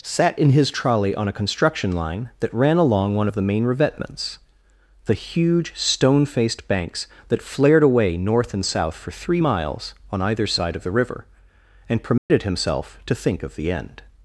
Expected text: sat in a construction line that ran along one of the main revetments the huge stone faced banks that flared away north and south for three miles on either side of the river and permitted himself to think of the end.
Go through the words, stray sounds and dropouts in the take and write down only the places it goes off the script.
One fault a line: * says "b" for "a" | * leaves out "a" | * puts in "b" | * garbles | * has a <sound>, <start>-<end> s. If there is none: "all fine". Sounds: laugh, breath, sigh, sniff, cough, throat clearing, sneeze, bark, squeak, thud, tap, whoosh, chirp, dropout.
* puts in "his trolley on"
* has a dropout, 12.2-12.3 s